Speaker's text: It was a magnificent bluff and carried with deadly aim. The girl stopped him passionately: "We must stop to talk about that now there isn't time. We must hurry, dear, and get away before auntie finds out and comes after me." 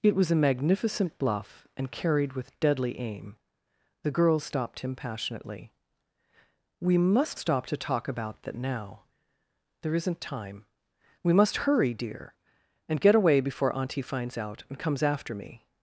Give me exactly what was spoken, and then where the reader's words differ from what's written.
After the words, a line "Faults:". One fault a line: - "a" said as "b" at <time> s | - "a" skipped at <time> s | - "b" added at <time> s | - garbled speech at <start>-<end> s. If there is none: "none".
It was a magnificent bluff and carried with deadly aim. The girl stopped him passionately: "We must stop to talk about that now there isn't time. We must hurry, dear, and get away before auntie finds out and comes after me."
Faults:
none